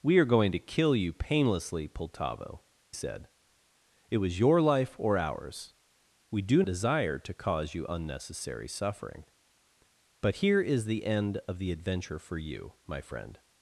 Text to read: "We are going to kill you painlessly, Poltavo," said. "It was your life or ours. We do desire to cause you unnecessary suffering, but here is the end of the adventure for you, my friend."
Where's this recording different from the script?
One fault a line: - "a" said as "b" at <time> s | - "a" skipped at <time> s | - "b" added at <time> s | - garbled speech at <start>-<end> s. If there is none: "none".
none